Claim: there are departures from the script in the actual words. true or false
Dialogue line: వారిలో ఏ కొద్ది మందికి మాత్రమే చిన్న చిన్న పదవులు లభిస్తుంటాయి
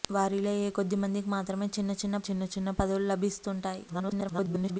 true